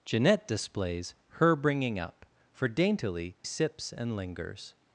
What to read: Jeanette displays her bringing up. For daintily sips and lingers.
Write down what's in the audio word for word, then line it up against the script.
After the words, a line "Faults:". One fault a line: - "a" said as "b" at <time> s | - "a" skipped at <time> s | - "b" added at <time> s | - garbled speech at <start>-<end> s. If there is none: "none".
Jeanette displays her bringing up. For daintily sips and lingers.
Faults:
none